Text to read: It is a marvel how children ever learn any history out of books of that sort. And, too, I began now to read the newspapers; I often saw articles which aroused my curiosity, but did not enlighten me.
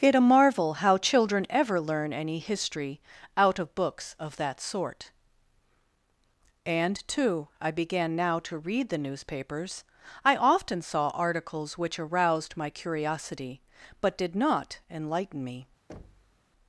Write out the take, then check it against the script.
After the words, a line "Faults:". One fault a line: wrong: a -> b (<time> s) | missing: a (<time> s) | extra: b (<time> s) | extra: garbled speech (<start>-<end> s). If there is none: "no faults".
It a marvel how children ever learn any history out of books of that sort. And, too, I began now to read the newspapers; I often saw articles which aroused my curiosity, but did not enlighten me.
Faults:
missing: is (0.1 s)